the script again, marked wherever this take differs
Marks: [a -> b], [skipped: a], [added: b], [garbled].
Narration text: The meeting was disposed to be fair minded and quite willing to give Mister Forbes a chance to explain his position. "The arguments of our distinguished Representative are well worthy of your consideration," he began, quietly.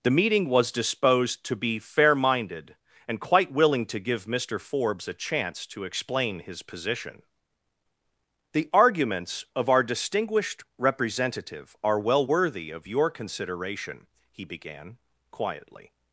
The meeting was disposed to be fair minded and quite willing to give Mister Forbes a chance to explain his position. "The arguments of our distinguished Representative are well worthy of your consideration," he began, quietly.